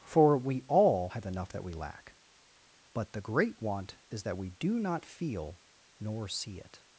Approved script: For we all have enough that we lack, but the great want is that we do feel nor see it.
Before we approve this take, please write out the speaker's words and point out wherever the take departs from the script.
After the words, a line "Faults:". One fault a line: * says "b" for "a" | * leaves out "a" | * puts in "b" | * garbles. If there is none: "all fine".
For we all have enough that we lack, but the great want is that we do not feel nor see it.
Faults:
* puts in "not"